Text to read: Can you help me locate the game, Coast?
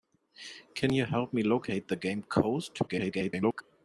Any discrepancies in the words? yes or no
yes